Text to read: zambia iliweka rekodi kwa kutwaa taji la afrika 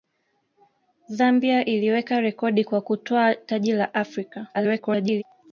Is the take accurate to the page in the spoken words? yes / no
no